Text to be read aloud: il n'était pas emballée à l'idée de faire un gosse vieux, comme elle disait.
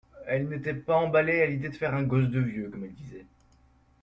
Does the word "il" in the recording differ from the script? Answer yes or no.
yes